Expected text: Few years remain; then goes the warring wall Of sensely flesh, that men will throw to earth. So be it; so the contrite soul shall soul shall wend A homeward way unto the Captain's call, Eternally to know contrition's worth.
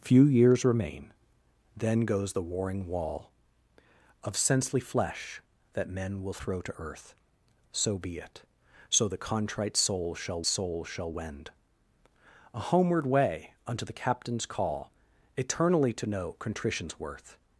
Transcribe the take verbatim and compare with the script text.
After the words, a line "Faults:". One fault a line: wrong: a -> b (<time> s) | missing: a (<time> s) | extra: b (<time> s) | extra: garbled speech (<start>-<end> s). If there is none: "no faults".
Few years remain; then goes the warring wall Of sensely flesh, that men will throw to earth. So be it; so the contrite soul shall soul shall wend A homeward way unto the Captain's call, Eternally to know contrition's worth.
Faults:
no faults